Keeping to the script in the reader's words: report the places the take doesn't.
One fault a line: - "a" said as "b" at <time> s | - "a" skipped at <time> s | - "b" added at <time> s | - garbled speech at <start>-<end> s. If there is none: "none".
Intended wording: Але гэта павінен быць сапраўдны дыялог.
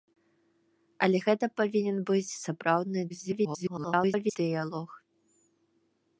- garbled speech at 3.1-4.4 s